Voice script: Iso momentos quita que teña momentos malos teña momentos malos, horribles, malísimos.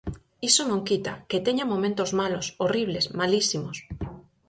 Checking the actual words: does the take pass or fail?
fail